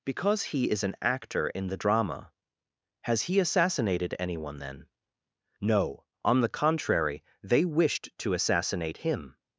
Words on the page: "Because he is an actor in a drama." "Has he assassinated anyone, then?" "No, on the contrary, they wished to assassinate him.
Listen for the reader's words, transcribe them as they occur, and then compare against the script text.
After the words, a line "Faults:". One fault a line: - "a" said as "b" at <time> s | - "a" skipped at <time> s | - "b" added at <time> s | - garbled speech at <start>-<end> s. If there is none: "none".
"Because he is an actor in the drama." "Has he assassinated anyone, then?" "No, on the contrary, they wished to assassinate him.
Faults:
- "a" said as "the" at 1.7 s